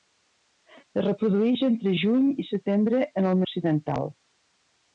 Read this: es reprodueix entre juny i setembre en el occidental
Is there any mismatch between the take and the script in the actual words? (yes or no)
no